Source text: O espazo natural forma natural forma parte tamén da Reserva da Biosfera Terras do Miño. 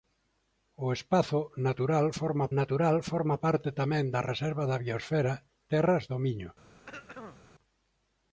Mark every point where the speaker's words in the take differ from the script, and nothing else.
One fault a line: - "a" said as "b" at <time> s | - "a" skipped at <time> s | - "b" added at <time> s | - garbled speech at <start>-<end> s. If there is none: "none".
none